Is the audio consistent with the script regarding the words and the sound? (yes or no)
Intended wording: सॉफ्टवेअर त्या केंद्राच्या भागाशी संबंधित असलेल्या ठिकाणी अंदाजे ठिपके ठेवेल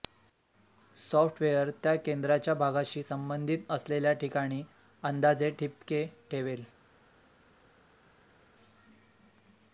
yes